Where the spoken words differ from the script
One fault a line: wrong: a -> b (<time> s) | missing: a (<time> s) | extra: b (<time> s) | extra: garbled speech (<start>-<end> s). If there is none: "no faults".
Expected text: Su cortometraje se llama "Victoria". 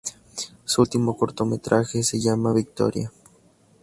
extra: último (0.8 s)